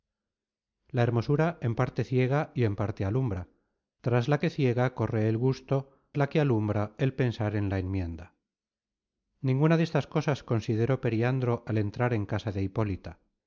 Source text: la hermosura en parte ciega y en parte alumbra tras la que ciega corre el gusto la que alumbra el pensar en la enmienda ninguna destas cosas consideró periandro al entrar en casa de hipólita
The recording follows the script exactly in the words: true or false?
true